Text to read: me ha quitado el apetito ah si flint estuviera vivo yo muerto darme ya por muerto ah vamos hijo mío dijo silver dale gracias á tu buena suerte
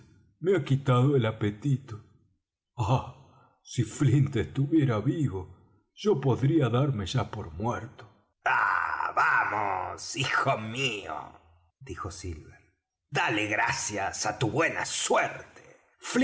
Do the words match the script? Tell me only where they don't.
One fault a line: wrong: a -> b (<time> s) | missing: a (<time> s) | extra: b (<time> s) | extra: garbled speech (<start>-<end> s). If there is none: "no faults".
wrong: muerto -> podría (6.2 s)